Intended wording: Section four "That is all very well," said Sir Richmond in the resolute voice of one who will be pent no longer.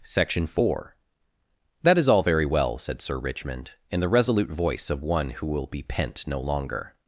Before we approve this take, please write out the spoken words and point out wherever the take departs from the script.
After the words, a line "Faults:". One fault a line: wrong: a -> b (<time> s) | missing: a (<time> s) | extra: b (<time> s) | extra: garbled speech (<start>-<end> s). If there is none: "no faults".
Section four "That is all very well," said Sir Richmond in the resolute voice of one who will be pent no longer.
Faults:
no faults